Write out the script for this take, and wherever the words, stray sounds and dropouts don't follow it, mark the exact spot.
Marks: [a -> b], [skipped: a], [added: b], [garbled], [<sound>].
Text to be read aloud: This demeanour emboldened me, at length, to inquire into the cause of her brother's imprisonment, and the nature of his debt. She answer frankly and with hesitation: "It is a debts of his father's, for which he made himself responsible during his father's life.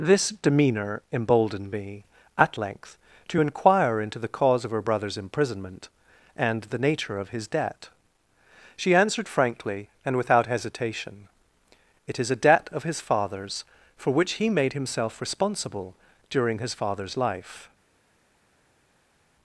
This demeanour emboldened me, at length, to inquire into the cause of her brother's imprisonment, and the nature of his debt. She [answer -> answered] frankly and [with -> without] hesitation: "It is a [debts -> debt] of his father's, for which he made himself responsible during his father's life.